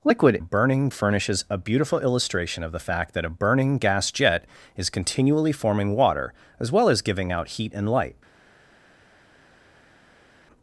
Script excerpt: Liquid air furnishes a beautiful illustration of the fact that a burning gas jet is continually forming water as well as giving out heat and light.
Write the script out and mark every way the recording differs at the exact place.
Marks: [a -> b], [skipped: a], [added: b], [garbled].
Liquid [air -> burning] furnishes a beautiful illustration of the fact that a burning gas jet is continually forming water as well as giving out heat and light.